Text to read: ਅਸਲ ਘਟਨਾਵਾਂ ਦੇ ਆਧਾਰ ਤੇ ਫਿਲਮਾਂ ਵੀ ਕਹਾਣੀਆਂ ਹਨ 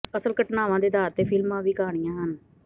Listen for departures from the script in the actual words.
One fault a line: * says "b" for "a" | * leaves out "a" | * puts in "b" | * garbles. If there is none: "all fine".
all fine